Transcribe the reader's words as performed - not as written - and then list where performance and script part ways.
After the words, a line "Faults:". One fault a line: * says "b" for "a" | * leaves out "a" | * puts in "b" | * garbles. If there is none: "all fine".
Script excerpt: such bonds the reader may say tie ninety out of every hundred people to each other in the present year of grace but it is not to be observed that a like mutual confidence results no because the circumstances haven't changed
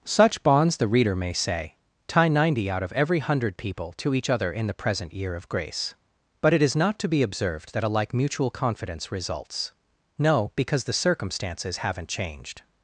such bonds the reader may say tie ninety out of every hundred people to each other in the present year of grace but it is not to be observed that a like mutual confidence results no because the circumstances haven't changed
Faults:
all fine